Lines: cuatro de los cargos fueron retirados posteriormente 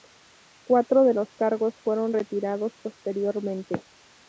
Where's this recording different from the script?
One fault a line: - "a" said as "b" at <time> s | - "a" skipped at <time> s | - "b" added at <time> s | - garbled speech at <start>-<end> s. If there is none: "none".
none